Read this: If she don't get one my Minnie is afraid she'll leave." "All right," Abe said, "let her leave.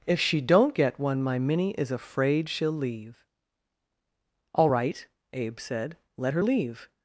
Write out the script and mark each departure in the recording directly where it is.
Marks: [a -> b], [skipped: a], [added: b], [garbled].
If she don't get one my Minnie is afraid she'll leave." "All right," Abe said, "let her leave.